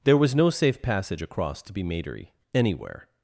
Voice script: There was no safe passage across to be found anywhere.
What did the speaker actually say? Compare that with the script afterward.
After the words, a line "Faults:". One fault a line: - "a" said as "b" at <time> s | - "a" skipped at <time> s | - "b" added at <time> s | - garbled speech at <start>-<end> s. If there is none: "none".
There was no safe passage across to be matery anywhere.
Faults:
- "found" said as "matery" at 1.8 s